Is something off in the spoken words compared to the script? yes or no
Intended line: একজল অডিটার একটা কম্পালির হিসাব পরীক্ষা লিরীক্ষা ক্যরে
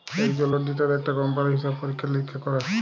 no